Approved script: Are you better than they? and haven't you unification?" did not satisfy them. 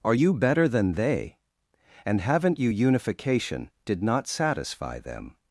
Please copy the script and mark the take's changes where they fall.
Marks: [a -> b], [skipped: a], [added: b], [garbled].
Are you better than they? and haven't you unification?" did not satisfy them.